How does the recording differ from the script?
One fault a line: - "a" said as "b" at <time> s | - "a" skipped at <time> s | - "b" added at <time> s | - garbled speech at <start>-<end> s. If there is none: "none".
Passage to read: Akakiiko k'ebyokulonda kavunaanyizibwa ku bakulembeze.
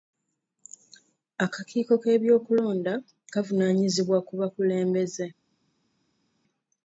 none